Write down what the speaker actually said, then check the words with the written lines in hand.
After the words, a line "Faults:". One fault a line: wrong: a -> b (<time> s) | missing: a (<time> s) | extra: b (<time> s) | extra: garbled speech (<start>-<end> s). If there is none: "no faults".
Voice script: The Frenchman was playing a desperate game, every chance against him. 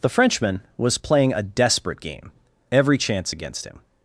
The Frenchman was playing a desperate game, every chance against him.
Faults:
no faults